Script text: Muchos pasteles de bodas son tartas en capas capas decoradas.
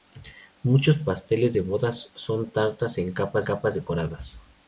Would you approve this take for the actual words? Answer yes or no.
yes